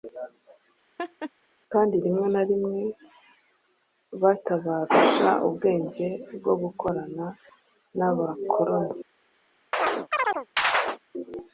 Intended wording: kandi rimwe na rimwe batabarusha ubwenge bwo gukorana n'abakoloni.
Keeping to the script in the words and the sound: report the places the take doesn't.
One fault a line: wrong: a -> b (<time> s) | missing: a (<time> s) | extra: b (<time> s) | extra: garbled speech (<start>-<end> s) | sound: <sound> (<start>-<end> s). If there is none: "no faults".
sound: laugh (1.0-1.3 s)
sound: chirp (9.7-11.0 s)